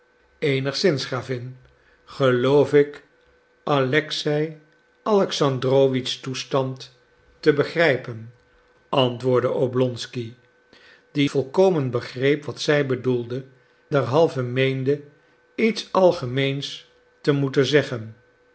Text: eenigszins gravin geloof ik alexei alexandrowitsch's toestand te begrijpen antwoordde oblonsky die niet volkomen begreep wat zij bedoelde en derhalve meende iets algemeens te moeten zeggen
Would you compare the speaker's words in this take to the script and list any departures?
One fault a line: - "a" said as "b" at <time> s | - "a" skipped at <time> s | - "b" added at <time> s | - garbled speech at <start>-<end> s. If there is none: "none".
- "niet" skipped at 11.3 s
- "en" skipped at 13.4 s